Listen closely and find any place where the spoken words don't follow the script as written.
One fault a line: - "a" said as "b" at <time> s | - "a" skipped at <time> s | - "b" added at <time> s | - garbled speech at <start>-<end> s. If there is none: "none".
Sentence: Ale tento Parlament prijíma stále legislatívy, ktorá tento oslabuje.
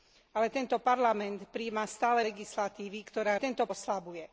none